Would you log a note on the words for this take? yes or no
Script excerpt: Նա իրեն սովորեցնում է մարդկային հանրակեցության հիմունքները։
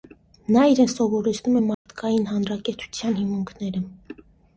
no